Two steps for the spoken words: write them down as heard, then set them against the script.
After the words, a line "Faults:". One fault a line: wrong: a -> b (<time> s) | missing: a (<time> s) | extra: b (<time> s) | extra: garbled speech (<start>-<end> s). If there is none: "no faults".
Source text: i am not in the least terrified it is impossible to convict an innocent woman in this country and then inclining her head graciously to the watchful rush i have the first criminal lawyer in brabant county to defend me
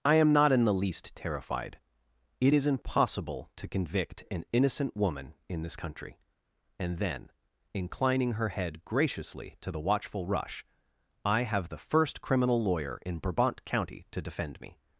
i am not in the least terrified it is impossible to convict an innocent woman in this country and then inclining her head graciously to the watchful rush i have the first criminal lawyer in brabant county to defend me
Faults:
no faults